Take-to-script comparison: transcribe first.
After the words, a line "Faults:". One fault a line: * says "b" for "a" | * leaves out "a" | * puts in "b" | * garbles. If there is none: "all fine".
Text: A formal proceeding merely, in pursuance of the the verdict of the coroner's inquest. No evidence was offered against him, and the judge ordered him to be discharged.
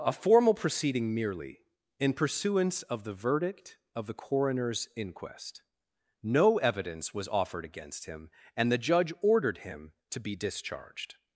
A formal proceeding merely, in pursuance of the verdict of the coroner's inquest. No evidence was offered against him, and the judge ordered him to be discharged.
Faults:
* leaves out "the"